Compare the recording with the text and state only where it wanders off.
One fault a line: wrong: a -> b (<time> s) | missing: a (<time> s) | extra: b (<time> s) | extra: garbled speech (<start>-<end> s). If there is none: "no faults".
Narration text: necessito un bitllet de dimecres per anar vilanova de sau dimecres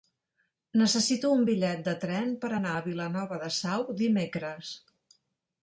wrong: dimecres -> tren (2.0 s)
extra: a (2.7 s)